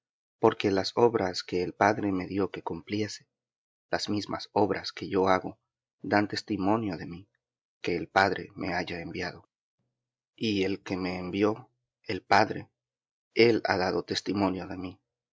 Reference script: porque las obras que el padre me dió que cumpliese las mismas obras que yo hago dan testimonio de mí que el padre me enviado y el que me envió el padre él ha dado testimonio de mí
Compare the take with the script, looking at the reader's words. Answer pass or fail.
fail